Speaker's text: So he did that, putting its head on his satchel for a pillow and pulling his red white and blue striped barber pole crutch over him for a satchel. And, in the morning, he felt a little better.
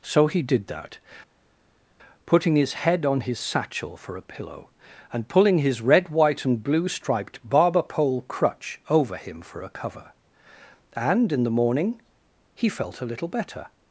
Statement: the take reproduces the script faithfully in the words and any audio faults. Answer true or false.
false